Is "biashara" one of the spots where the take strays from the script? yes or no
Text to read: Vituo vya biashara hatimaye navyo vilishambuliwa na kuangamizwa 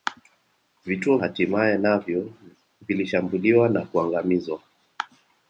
yes